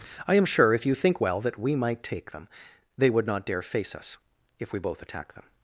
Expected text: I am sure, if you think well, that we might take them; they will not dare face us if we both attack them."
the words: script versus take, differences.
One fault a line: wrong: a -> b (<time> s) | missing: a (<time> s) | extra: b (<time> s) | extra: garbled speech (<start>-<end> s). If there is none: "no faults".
wrong: will -> would (3.1 s)